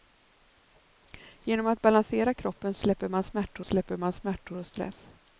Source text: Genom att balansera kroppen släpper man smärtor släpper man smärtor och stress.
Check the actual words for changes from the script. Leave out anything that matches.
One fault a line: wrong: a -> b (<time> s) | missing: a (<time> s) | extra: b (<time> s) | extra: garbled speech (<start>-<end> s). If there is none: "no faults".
no faults